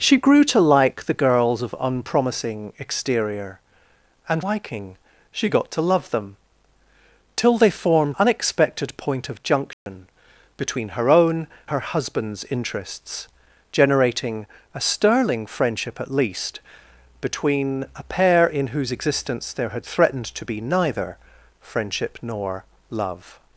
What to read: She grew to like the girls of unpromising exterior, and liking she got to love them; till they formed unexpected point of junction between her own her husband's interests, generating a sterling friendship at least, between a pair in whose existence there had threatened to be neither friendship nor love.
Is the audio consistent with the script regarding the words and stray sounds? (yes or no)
no